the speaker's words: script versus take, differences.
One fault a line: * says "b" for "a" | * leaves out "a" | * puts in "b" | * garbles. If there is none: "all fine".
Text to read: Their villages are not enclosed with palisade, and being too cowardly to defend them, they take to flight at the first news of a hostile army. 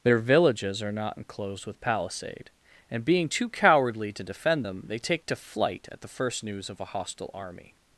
all fine